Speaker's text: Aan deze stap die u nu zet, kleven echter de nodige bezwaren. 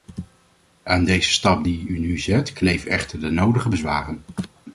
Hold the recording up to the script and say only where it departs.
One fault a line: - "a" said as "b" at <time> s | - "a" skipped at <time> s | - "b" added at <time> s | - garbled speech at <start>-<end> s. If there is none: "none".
none